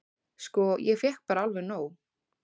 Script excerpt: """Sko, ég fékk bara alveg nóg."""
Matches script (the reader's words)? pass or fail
pass